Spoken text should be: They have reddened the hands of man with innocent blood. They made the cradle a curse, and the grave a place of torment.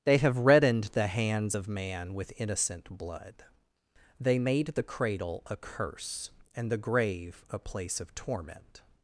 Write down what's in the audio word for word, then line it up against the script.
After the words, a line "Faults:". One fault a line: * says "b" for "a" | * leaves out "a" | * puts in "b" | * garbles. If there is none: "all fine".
They have reddened the hands of man with innocent blood. They made the cradle a curse, and the grave a place of torment.
Faults:
all fine